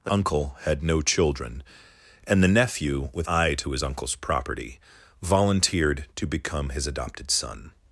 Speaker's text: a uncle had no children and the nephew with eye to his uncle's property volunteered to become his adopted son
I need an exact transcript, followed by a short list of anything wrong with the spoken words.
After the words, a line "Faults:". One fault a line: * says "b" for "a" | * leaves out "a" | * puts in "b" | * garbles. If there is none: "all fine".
a uncle had no children and the nephew with eye to his uncle's property volunteered to become his adopted son
Faults:
all fine